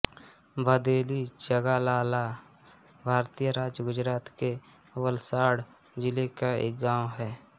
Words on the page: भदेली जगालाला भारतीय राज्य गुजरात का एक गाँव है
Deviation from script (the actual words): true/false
true